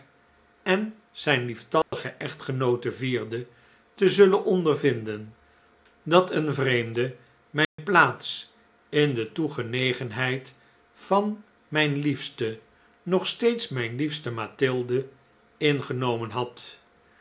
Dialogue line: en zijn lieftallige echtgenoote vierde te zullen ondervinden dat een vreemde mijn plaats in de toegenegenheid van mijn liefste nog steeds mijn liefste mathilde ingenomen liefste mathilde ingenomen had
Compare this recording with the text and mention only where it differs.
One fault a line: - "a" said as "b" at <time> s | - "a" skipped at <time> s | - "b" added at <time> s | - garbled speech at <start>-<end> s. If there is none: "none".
- "liefste mathilde ingenomen" skipped at 16.3 s